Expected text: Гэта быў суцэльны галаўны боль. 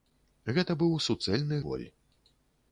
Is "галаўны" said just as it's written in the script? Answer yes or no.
no